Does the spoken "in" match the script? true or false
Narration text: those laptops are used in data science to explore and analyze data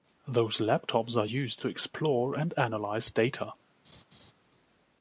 false